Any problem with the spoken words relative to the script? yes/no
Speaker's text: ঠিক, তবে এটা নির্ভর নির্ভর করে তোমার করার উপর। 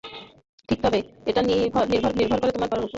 no